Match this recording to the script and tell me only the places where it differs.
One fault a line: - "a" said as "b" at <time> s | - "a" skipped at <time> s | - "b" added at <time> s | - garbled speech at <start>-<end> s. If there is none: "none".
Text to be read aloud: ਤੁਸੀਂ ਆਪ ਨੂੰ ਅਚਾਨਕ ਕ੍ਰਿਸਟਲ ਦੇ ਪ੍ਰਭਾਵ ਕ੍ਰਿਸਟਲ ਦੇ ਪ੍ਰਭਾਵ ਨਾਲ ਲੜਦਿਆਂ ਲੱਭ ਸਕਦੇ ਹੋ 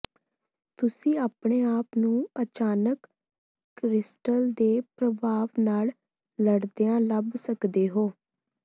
- "ਆਪਣੇ" added at 1.2 s
- "ਕ੍ਰਿਸਟਲ ਦੇ ਪ੍ਰਭਾਵ" skipped at 5.5 s